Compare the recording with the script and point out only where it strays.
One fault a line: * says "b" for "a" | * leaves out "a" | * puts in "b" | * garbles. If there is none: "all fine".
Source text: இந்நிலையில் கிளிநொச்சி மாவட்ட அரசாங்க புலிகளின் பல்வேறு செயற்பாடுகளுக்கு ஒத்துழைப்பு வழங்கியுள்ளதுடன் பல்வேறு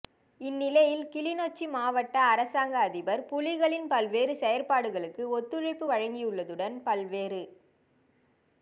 * puts in "அதிபர்"